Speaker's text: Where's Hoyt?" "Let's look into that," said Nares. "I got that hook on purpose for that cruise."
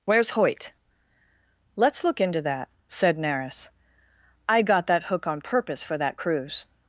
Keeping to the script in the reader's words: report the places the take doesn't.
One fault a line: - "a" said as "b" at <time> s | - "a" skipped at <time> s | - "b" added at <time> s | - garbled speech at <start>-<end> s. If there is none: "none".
none